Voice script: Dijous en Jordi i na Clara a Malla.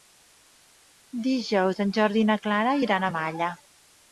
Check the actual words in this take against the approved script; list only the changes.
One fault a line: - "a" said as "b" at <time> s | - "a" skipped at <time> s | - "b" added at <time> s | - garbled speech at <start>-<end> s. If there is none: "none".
- "iran" added at 2.9 s